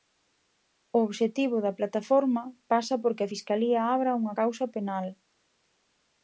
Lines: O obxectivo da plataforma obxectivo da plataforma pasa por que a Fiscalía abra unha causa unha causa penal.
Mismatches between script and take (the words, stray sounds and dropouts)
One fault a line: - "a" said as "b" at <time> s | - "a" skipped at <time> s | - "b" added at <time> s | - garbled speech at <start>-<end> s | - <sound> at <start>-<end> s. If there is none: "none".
- "obxectivo da plataforma" skipped at 2.4 s
- "unha causa" skipped at 4.7 s